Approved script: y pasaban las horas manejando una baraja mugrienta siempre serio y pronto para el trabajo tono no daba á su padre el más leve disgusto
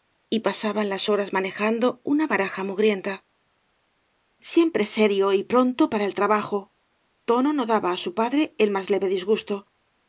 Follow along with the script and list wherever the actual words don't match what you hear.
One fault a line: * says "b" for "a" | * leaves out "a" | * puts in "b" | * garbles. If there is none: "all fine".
all fine